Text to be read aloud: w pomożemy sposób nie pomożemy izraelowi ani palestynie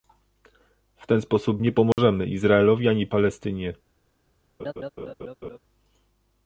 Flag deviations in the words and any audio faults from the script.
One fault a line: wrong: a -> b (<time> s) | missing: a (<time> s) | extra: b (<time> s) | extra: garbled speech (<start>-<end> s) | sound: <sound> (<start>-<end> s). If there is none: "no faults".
wrong: pomożemy -> ten (1.1 s)
sound: dropout (1.9-2.0 s)
sound: laugh (4.6-5.6 s)